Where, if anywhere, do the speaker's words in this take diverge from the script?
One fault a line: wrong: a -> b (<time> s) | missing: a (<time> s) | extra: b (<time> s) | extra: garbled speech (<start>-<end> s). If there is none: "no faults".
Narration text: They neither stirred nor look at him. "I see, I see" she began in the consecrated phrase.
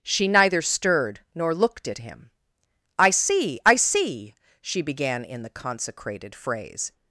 wrong: They -> She (0.0 s)
wrong: look -> looked (1.5 s)